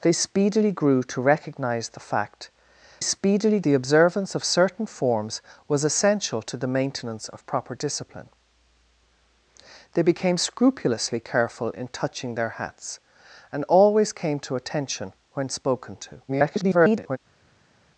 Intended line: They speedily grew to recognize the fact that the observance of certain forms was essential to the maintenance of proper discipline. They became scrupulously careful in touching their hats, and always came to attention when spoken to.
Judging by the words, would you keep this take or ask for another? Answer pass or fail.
fail